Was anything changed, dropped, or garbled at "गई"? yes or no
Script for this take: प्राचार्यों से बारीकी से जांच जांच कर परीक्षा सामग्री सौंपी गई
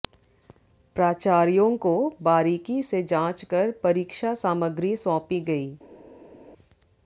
no